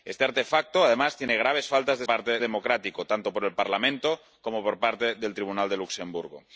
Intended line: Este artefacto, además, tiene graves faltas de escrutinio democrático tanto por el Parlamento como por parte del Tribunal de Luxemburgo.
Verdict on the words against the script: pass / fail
fail